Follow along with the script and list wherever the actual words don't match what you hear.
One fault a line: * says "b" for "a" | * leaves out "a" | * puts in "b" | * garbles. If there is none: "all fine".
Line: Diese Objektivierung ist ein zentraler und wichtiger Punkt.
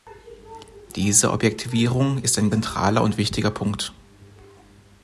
all fine